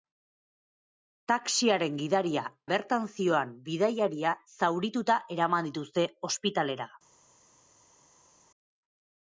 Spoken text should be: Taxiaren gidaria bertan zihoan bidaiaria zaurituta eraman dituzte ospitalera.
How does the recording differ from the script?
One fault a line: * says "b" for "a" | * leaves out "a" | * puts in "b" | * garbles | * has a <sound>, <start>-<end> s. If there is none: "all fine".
all fine